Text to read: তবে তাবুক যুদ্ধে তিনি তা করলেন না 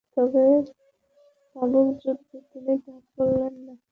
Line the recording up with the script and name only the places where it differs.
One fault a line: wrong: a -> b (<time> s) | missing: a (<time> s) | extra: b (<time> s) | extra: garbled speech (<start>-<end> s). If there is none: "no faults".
no faults